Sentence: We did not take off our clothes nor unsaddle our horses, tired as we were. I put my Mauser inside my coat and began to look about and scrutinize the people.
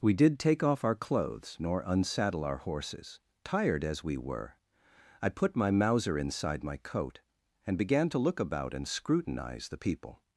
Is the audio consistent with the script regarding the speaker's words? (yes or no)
no